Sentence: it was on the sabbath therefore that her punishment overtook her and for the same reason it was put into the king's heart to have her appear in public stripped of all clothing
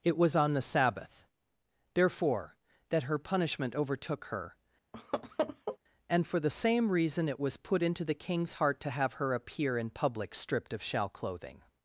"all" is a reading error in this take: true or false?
true